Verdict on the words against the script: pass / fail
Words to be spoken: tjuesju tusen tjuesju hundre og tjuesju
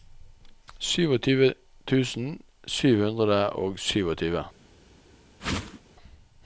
fail